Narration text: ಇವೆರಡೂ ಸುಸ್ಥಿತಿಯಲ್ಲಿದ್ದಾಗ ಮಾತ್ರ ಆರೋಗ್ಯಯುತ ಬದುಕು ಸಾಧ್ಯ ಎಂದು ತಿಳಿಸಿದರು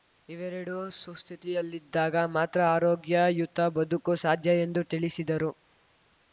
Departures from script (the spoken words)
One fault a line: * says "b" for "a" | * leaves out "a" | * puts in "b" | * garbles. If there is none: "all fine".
all fine